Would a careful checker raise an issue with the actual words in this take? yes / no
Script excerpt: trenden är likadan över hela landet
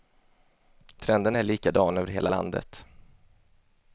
no